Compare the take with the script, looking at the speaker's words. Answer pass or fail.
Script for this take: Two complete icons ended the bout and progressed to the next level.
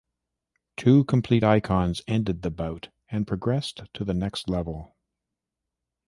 pass